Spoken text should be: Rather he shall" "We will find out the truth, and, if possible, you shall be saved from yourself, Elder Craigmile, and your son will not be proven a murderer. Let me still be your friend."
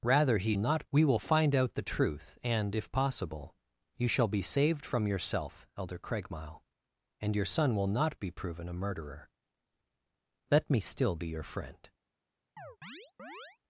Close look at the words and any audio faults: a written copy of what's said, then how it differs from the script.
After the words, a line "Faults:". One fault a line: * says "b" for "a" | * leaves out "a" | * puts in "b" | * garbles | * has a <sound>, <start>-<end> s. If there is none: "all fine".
Rather he not" "We will find out the truth, and, if possible, you shall be saved from yourself, Elder Craigmile, and your son will not be proven a murderer. Let me still be your friend."
Faults:
* says "not" for "shall"
* has a chirp, 12.6-13.6 s